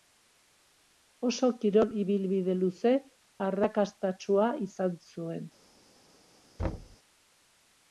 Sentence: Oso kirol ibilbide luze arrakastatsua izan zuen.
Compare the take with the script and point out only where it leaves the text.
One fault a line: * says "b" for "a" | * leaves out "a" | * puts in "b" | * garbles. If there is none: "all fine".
all fine